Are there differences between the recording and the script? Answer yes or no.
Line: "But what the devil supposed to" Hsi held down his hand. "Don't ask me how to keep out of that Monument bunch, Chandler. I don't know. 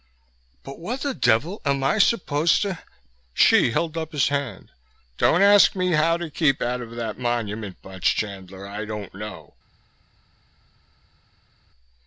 yes